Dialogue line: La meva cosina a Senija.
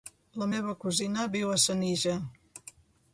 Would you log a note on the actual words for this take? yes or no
yes